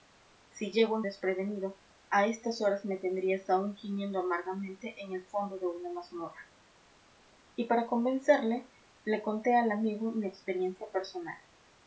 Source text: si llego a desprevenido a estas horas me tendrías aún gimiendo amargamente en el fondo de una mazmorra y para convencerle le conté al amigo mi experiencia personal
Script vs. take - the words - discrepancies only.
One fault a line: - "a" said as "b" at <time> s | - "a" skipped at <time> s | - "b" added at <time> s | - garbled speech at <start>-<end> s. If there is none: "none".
none